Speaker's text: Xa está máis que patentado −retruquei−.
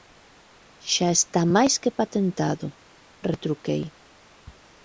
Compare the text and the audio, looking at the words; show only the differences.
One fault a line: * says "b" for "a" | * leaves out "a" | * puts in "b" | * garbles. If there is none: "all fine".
all fine